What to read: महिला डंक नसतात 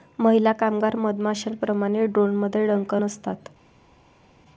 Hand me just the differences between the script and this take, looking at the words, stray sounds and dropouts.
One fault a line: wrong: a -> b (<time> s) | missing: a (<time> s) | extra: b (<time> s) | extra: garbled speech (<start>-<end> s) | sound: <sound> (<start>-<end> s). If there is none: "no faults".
extra: कामगार मधमाश्यांप्रमाणे ड्रोनमध्ये (0.5 s)